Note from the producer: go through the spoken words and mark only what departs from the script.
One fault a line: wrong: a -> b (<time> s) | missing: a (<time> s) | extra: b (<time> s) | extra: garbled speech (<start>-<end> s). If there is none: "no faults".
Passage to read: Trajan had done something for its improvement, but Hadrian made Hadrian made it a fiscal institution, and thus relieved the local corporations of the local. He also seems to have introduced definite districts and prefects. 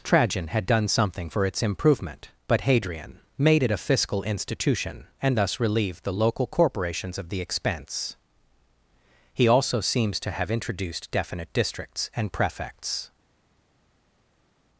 missing: Hadrian made (3.6 s)
wrong: local -> expense (7.4 s)